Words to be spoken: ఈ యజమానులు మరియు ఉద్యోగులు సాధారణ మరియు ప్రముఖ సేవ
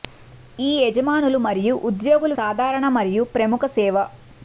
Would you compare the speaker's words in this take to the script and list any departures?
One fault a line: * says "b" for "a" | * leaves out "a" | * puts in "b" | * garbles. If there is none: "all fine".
all fine